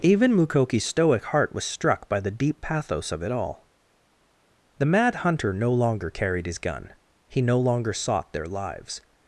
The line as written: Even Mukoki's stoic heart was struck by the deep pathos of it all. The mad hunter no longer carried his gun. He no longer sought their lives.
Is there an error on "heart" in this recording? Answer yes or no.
no